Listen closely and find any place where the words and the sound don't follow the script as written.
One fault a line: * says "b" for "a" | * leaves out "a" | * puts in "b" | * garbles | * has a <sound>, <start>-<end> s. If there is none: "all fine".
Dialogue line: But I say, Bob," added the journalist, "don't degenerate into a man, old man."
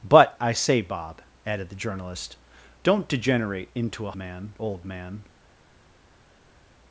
all fine